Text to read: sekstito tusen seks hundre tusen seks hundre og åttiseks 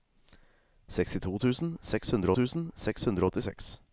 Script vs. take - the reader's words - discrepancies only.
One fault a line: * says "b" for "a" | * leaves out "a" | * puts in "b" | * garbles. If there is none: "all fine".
all fine